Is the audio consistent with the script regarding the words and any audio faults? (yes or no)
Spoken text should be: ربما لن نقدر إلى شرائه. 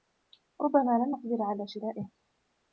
no